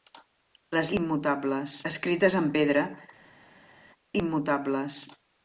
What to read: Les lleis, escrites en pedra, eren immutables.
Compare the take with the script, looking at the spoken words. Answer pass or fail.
fail